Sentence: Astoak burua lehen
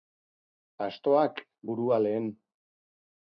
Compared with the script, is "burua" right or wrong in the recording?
right